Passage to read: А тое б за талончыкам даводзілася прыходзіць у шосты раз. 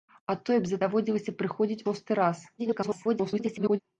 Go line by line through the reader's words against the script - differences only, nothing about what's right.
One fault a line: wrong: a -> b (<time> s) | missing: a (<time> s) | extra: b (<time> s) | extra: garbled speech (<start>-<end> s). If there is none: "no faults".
missing: талончыкам (0.8 s)
missing: у (1.8 s)
extra: garbled speech (2.6-3.8 s)